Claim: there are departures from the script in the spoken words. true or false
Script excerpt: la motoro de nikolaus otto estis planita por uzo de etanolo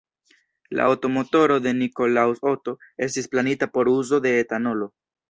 true